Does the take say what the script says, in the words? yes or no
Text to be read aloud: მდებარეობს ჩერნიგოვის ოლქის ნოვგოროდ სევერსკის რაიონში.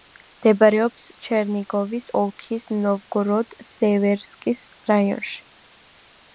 yes